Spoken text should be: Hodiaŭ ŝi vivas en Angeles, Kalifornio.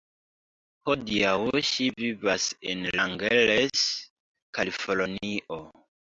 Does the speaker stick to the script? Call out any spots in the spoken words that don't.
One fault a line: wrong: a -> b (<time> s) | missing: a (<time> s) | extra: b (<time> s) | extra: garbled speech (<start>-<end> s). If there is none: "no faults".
no faults